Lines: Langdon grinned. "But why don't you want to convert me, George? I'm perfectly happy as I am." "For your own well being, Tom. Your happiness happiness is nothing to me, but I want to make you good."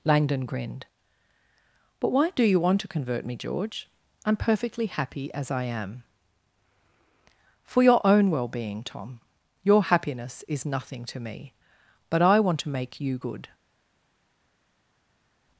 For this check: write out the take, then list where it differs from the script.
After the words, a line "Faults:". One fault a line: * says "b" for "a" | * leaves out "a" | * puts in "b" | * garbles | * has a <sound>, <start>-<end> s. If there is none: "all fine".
Langdon grinned. "But why do you want to convert me, George? I'm perfectly happy as I am." "For your own well being, Tom. Your happiness is nothing to me, but I want to make you good."
Faults:
* says "do" for "don't"
* leaves out "happiness"